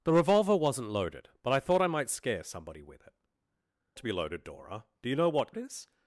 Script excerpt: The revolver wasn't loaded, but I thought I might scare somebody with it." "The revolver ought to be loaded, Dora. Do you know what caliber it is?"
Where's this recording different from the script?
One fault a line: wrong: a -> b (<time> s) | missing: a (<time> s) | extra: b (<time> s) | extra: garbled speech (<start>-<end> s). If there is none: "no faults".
missing: The revolver ought (3.1 s)
missing: caliber (5.5 s)